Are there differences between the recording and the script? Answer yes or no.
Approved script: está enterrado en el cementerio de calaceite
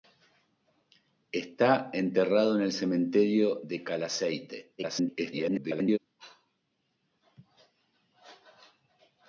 yes